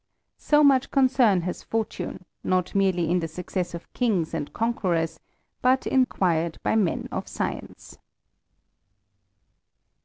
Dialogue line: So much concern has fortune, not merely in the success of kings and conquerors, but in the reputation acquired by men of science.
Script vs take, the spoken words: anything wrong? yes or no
yes